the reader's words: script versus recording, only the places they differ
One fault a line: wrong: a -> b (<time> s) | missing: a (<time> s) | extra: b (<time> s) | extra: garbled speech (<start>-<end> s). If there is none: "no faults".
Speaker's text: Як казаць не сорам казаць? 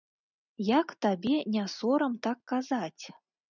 wrong: казаць -> табе (1.1 s)
extra: так (2.3 s)